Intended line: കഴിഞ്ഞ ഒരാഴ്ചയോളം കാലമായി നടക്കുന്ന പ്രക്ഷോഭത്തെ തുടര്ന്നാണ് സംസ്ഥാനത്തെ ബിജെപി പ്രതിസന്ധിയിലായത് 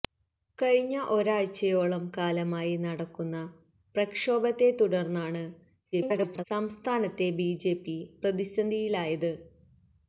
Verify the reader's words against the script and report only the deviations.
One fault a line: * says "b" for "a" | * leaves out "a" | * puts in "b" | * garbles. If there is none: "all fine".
* garbles